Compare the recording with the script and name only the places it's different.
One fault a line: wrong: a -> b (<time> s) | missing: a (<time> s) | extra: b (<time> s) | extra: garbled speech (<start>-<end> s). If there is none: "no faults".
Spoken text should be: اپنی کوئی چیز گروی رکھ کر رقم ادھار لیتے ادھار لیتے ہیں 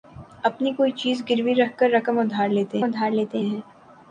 no faults